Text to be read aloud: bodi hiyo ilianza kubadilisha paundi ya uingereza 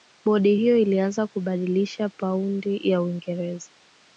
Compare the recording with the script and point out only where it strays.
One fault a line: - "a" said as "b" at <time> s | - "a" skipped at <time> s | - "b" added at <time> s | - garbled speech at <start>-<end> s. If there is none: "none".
none